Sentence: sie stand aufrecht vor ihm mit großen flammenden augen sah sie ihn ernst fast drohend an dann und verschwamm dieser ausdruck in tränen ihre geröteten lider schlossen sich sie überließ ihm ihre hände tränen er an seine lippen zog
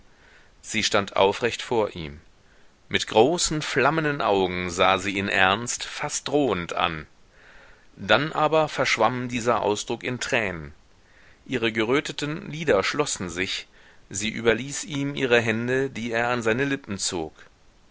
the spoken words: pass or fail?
fail